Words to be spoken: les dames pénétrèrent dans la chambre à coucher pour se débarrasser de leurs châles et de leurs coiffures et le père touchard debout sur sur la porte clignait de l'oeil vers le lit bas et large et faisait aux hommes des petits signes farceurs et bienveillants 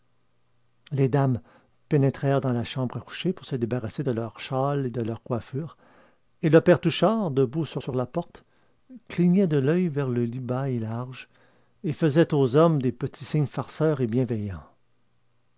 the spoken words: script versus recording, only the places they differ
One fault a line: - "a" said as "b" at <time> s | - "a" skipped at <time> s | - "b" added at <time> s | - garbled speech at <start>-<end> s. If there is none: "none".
none